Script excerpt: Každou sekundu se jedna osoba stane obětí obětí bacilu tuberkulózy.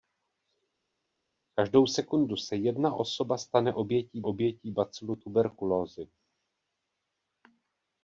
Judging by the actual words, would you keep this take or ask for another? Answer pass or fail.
pass